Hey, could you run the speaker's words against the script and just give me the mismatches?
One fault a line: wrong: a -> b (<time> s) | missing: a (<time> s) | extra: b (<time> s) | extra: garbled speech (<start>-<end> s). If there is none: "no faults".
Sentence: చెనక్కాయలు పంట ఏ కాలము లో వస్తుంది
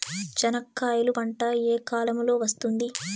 no faults